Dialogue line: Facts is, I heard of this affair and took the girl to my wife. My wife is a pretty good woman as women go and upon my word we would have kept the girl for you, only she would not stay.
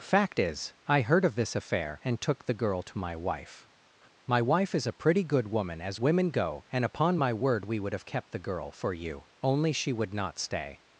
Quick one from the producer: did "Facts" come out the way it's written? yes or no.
no